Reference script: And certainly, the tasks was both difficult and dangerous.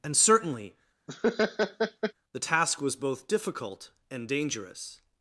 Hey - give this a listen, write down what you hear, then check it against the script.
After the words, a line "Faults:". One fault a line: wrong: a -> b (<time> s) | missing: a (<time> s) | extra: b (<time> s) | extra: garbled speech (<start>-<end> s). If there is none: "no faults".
And certainly, the task was both difficult and dangerous.
Faults:
wrong: tasks -> task (2.4 s)